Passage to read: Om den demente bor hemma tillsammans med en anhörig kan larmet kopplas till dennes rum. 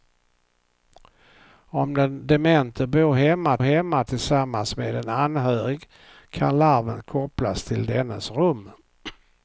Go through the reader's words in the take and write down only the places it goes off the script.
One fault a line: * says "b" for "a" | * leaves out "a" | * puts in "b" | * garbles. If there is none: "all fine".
* puts in "hemma"